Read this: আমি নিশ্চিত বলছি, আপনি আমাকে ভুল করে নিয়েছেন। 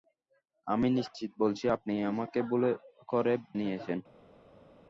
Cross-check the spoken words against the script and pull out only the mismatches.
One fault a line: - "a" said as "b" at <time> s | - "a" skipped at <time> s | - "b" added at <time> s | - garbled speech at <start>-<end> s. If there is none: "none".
none